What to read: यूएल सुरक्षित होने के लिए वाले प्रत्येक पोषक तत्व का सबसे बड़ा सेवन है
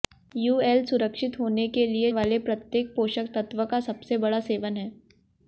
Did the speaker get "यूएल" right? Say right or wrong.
right